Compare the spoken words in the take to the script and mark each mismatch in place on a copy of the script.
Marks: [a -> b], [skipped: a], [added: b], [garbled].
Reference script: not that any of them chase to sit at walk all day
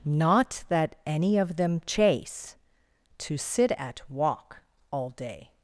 not that any of them chase to sit at walk all day